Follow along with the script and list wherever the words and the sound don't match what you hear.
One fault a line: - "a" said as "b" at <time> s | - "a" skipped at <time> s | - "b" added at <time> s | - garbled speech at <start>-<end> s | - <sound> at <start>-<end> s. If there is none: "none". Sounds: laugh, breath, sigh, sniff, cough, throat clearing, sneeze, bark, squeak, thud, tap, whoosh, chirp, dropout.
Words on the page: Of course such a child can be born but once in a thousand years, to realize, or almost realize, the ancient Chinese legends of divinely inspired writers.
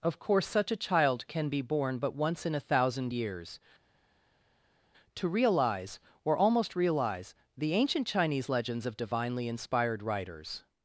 none